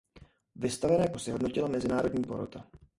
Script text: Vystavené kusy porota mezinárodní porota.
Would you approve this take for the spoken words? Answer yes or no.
no